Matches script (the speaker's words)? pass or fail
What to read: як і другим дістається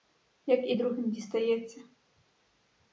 pass